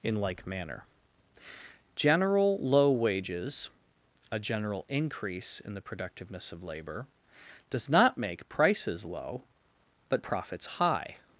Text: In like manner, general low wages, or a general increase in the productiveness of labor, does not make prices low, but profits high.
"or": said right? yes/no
no